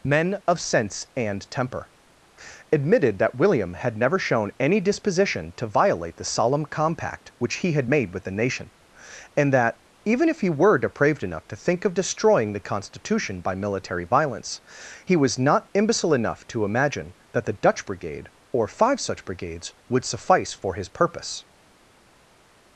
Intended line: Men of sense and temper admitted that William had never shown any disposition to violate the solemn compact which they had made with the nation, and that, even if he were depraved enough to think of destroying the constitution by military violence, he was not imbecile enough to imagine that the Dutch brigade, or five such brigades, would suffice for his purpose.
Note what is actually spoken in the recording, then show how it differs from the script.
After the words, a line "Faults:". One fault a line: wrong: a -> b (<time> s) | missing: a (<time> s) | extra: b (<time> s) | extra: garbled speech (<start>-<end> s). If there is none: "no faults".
Men of sense and temper admitted that William had never shown any disposition to violate the solemn compact which he had made with the nation, and that, even if he were depraved enough to think of destroying the constitution by military violence, he was not imbecile enough to imagine that the Dutch brigade, or five such brigades, would suffice for his purpose.
Faults:
wrong: they -> he (7.6 s)